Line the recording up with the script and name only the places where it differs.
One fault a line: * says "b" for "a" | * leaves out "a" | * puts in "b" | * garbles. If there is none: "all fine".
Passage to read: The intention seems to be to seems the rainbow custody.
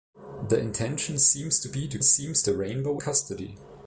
all fine